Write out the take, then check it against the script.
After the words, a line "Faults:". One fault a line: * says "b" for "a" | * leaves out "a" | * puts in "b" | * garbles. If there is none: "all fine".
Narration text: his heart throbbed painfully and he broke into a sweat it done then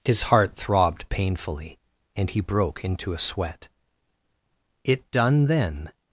his heart throbbed painfully and he broke into a sweat it done then
Faults:
all fine